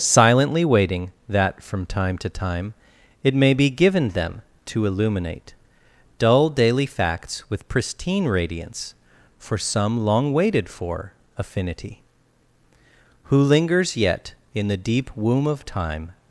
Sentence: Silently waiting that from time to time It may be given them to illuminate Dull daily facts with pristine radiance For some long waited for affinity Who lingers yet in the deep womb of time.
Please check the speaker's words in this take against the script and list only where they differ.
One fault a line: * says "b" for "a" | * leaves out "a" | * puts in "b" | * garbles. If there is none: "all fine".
all fine